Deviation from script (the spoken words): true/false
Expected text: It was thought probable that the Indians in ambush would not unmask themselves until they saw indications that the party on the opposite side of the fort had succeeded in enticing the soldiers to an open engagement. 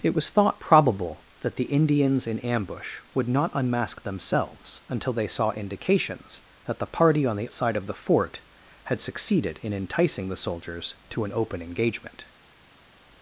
true